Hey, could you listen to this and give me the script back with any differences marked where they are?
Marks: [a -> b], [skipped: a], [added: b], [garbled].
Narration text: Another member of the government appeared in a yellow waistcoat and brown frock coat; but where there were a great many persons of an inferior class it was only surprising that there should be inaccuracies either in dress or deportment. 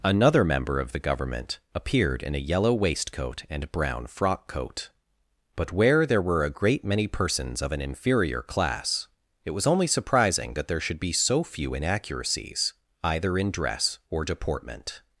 Another member of the government appeared in a yellow waistcoat and brown frock coat; but where there were a great many persons of an inferior class it was only surprising that there should be [added: so few] inaccuracies either in dress or deportment.